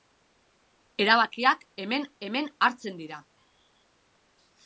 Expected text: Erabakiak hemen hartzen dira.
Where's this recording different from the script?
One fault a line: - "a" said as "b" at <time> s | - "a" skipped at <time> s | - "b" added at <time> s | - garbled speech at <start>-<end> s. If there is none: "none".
- "hemen" added at 2.3 s